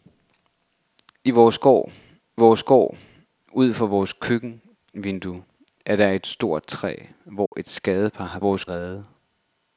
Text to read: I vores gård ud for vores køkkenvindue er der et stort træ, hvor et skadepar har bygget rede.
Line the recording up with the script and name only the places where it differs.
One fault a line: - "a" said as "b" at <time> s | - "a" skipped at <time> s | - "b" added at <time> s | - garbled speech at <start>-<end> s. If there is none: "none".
- "vores gård" added at 2.4 s
- "bygget" said as "vores" at 8.4 s